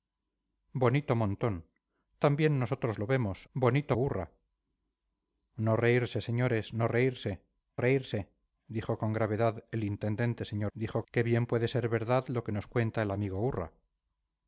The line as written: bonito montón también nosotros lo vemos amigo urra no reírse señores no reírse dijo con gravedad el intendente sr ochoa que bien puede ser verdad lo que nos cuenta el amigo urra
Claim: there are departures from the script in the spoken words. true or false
true